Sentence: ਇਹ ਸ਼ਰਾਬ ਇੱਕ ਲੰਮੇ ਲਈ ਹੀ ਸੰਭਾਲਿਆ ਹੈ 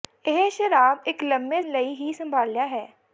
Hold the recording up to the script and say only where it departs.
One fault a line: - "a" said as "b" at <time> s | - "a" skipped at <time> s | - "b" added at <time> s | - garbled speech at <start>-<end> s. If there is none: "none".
none